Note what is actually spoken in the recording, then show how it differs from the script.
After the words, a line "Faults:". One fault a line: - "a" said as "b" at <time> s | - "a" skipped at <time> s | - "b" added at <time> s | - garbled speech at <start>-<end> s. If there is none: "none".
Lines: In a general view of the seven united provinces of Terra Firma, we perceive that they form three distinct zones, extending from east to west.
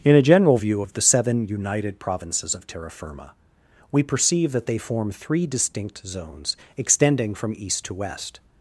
In a general view of the seven united provinces of Terra Firma, we perceive that they form three distinct zones, extending from east to west.
Faults:
none